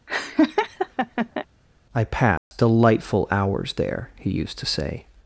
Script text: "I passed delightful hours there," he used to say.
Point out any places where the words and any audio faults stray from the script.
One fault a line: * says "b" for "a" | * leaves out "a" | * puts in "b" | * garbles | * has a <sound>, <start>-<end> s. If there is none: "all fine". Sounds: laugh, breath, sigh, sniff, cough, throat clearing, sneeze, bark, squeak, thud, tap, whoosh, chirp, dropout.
* has a laugh, 0.1-1.5 s
* has a dropout, 2.4-2.5 s